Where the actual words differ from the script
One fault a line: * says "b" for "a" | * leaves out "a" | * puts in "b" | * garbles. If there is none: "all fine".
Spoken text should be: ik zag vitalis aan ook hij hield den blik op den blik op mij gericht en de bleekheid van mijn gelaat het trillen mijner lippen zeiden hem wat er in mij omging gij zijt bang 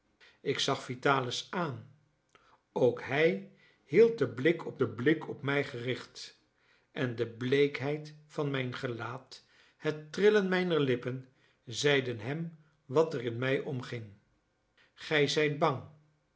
all fine